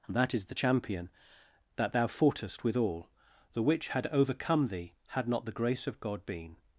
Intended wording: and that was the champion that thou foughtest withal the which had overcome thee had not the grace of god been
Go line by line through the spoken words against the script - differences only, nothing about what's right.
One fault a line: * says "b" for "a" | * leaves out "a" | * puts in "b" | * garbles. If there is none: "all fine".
* says "is" for "was"